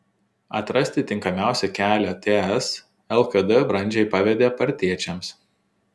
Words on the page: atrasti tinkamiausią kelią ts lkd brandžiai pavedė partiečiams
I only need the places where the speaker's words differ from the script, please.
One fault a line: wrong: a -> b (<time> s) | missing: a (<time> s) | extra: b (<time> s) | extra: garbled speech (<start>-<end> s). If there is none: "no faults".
no faults